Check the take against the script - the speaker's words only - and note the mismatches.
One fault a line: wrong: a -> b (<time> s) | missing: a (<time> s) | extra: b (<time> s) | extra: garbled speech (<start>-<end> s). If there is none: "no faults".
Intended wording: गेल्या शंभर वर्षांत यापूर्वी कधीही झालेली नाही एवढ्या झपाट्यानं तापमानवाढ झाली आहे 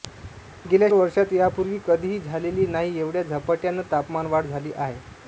missing: शंभर (0.9 s)